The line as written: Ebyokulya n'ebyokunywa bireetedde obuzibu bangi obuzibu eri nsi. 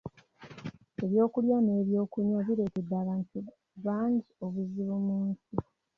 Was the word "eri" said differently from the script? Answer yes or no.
yes